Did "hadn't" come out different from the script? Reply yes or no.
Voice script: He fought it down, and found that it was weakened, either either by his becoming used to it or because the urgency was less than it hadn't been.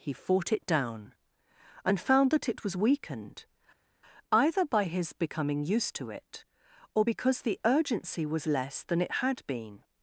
yes